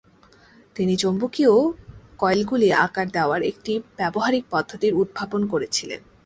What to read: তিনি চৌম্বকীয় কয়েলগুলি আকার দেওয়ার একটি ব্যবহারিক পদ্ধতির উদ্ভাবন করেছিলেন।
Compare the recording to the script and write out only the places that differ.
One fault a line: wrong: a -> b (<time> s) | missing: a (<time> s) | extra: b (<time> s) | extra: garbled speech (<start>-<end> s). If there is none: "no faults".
no faults